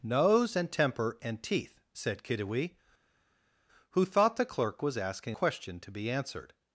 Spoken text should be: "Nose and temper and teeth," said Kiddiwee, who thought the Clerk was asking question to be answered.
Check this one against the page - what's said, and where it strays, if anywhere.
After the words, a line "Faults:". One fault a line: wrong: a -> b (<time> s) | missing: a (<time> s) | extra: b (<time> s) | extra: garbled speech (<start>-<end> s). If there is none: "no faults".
"Nose and temper and teeth," said Kiddiwee, who thought the Clerk was asking question to be answered.
Faults:
no faults